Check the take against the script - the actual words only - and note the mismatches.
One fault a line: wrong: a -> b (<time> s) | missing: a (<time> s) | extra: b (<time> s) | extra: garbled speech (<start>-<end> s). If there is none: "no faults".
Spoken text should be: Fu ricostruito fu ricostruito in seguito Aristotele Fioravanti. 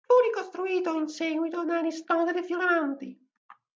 missing: fu ricostruito (0.9 s)
extra: da (1.6 s)